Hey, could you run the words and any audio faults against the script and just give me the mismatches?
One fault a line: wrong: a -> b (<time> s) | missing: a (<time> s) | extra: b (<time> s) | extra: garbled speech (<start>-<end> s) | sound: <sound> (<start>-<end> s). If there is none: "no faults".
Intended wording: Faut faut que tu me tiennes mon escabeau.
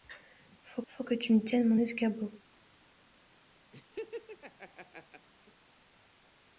sound: laugh (3.7-5.3 s)